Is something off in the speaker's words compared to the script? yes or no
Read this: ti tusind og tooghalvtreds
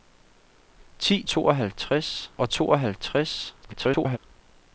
yes